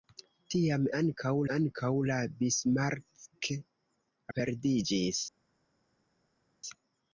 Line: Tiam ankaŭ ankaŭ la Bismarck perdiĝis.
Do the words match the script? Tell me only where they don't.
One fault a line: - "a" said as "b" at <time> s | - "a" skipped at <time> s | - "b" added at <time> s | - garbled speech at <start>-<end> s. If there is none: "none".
none